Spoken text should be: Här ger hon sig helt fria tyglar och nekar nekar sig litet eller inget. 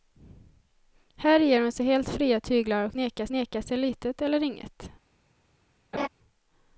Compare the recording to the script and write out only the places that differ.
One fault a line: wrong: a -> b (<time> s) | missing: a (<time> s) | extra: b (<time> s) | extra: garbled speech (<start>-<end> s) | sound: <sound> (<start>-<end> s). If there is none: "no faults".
sound: laugh (5.9-6.1 s)